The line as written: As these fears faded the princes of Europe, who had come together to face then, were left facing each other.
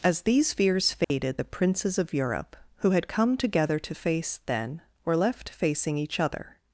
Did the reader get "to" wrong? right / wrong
right